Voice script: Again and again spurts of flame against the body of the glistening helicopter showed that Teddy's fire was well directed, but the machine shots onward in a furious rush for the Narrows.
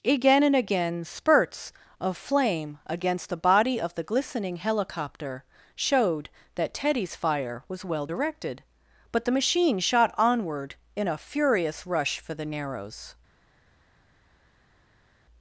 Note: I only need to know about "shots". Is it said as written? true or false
false